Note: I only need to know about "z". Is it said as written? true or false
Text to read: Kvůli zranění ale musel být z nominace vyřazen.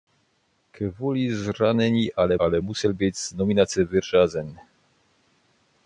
true